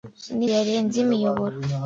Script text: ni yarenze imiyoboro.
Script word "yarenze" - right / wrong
right